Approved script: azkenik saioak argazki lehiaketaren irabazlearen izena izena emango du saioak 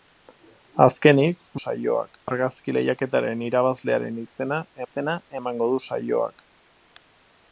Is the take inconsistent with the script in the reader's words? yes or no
no